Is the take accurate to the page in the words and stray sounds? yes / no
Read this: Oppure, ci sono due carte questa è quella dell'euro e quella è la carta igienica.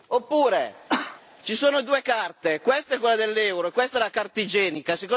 no